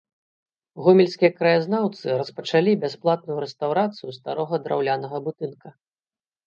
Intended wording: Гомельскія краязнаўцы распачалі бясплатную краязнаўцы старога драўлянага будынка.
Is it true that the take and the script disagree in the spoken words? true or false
true